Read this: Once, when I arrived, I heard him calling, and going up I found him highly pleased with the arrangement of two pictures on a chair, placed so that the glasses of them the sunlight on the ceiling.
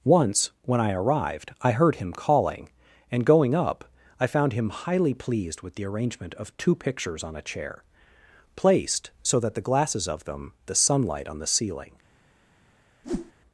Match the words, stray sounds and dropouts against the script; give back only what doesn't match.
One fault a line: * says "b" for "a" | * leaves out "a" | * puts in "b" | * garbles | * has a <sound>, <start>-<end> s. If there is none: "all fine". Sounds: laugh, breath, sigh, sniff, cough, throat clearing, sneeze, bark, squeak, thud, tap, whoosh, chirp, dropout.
* has a whoosh, 13.0-13.3 s